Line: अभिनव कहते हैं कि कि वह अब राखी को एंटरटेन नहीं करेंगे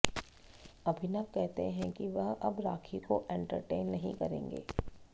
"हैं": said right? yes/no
yes